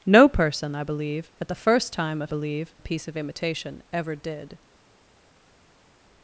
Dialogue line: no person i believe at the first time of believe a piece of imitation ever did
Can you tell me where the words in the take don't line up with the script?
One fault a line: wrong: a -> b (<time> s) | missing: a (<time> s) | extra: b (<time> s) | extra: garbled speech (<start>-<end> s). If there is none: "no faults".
no faults